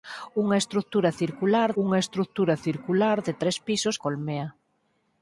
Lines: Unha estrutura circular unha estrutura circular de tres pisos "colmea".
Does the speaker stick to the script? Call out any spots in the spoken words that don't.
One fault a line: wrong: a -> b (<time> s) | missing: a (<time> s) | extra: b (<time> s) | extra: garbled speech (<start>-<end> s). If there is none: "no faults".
no faults